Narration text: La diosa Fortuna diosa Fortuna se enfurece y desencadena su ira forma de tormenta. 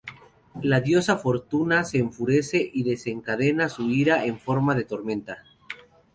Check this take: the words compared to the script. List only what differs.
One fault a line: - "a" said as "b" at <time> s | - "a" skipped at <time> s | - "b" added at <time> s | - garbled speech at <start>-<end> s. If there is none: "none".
- "diosa Fortuna" skipped at 1.8 s
- "en" added at 4.2 s